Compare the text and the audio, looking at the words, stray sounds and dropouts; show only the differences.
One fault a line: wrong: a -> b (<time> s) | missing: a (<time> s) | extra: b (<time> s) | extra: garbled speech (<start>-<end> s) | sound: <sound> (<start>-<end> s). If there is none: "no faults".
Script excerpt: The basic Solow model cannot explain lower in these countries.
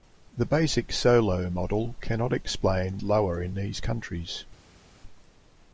no faults